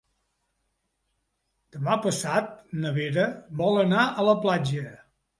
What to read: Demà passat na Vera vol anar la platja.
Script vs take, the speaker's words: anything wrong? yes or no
yes